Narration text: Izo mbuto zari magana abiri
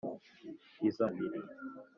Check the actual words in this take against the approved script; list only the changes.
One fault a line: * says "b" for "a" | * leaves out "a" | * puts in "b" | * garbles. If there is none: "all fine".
* leaves out "mbuto zari magana"